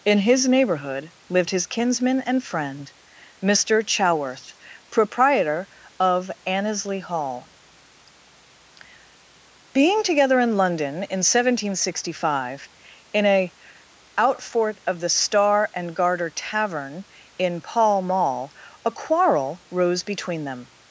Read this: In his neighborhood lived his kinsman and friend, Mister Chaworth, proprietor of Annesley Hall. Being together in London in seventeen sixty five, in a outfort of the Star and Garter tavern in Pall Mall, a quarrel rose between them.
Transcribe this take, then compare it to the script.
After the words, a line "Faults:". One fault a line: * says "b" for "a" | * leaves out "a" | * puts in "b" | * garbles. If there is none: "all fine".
In his neighborhood lived his kinsman and friend, Mister Chaworth, proprietor of Annesley Hall. Being together in London in seventeen sixty five, in a outfort of the Star and Garter tavern in Pall Mall, a quarrel rose between them.
Faults:
all fine